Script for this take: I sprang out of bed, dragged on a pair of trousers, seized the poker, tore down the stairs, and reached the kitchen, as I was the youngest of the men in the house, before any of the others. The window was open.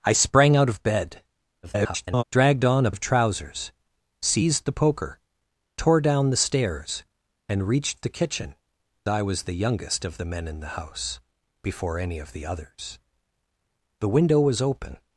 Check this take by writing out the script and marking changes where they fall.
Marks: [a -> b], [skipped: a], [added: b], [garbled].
I sprang out of bed, [garbled] dragged on a [skipped: pair] of trousers, seized the poker, tore down the stairs, and reached the kitchen, [skipped: as] I was the youngest of the men in the house, before any of the others. The window was open.